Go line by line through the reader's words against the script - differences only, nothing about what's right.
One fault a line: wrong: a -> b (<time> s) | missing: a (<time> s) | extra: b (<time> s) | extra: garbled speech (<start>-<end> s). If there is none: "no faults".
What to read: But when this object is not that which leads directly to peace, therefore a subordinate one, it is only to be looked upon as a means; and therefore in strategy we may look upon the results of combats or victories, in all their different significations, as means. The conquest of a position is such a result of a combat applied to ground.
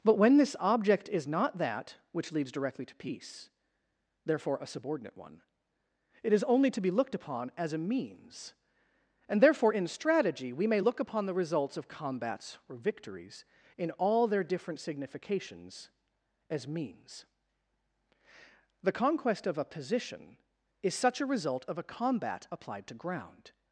no faults